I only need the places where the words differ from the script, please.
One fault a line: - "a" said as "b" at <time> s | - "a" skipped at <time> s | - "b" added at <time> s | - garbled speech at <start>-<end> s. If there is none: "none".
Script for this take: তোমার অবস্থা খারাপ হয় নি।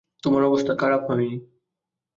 none